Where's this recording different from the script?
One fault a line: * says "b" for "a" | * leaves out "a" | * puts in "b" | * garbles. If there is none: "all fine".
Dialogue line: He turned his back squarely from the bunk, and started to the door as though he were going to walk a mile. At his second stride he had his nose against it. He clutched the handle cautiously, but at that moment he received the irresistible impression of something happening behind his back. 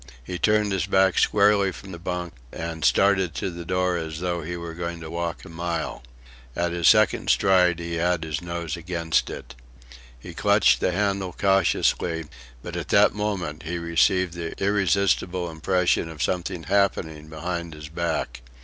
all fine